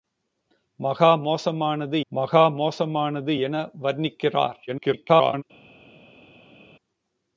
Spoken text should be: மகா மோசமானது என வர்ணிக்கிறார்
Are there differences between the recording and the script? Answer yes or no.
yes